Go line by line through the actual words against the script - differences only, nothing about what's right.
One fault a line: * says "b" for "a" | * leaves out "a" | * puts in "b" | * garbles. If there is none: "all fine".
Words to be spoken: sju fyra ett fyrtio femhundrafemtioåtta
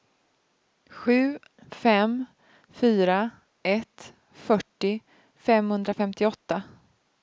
* puts in "fem"